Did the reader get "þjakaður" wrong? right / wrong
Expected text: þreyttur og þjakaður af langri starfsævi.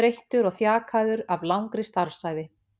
right